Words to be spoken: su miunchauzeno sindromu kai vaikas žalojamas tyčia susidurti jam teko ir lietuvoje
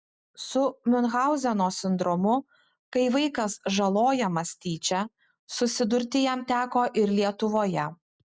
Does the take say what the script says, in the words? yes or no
yes